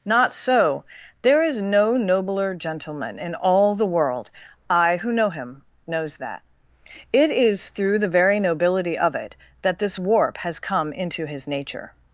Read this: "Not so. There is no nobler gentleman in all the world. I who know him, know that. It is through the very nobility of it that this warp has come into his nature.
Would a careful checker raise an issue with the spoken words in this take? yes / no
yes